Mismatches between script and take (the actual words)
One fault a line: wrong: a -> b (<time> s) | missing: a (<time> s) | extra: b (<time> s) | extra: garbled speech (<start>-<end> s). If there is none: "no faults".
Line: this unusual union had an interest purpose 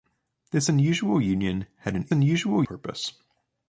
wrong: interest -> unusual (2.1 s)